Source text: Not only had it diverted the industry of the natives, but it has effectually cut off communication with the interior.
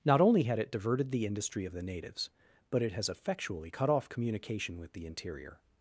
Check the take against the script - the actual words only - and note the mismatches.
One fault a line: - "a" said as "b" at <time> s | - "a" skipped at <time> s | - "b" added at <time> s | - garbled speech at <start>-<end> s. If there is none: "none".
none